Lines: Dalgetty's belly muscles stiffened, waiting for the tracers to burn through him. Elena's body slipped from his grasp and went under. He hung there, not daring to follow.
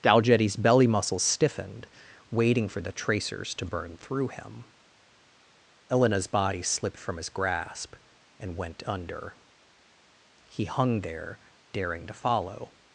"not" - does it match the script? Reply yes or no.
no